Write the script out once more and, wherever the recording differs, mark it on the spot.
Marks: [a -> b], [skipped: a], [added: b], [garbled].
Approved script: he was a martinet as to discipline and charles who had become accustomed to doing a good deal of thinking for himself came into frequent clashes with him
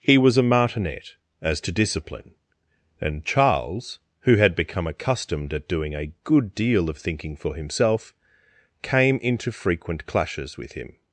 he was a martinet as to discipline and charles who had become accustomed [to -> at] doing a good deal of thinking for himself came into frequent clashes with him